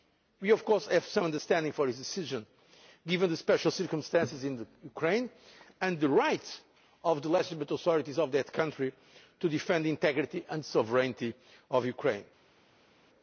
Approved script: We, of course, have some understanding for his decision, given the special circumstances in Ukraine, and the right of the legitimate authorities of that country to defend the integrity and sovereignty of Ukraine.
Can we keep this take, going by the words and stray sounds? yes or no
yes